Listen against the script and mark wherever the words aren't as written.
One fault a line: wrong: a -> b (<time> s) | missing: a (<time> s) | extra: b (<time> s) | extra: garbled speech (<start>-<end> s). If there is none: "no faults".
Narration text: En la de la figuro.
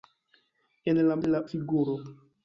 no faults